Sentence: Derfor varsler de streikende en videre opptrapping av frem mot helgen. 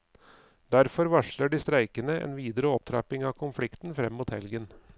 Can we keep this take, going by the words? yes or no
no